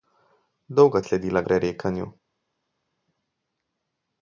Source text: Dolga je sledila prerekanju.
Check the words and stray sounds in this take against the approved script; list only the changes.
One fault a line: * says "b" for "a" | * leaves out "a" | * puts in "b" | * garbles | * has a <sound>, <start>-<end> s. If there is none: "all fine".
all fine